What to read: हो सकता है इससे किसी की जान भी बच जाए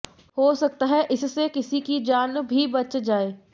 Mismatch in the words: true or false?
false